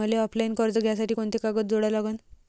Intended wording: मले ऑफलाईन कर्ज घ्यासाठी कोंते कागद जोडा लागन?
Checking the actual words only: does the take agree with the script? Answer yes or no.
yes